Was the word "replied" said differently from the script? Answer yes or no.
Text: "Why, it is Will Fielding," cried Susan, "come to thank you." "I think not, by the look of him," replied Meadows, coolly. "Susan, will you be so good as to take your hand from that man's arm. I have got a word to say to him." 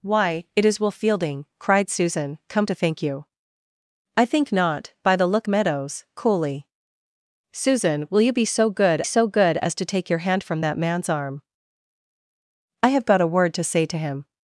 yes